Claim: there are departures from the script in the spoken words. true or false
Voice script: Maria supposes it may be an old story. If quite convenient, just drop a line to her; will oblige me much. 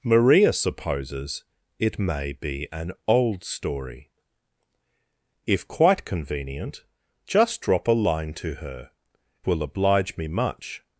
false